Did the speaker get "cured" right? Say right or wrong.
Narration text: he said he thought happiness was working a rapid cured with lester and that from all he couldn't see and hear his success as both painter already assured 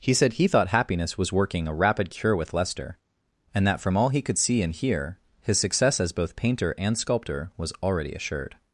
wrong